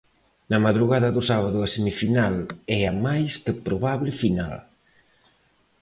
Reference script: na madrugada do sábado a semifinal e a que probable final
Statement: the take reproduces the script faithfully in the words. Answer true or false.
false